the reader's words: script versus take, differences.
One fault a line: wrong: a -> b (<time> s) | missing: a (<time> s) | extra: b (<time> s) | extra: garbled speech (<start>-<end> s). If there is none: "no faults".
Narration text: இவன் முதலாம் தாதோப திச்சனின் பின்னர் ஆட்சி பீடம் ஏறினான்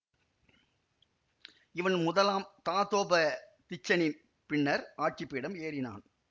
no faults